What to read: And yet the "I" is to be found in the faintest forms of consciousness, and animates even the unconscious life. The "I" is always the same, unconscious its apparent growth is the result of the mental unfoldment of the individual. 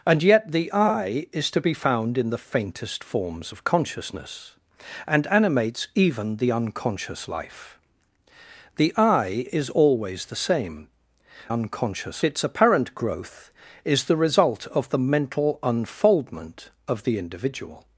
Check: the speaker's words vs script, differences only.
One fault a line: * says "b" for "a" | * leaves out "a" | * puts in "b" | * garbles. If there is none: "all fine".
all fine